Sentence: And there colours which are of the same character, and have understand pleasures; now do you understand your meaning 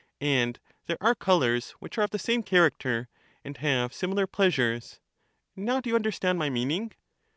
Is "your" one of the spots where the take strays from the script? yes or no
yes